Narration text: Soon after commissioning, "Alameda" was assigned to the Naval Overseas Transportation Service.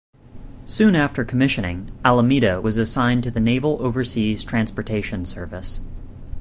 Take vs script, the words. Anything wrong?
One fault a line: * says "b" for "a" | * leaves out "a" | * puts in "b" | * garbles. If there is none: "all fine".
all fine